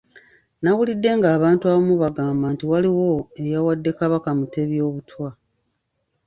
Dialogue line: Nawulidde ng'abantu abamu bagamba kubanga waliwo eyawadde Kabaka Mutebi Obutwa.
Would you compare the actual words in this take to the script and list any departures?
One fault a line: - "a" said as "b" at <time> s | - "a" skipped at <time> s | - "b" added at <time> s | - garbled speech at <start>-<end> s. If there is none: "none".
- "kubanga" said as "nti" at 2.5 s